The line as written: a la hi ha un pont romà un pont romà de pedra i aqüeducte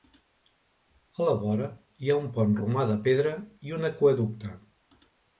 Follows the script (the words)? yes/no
no